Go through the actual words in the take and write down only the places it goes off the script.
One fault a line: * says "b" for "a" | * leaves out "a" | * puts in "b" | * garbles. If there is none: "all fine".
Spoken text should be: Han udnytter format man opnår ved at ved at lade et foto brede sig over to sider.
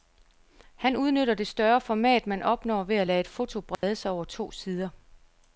* puts in "det større"
* leaves out "ved at"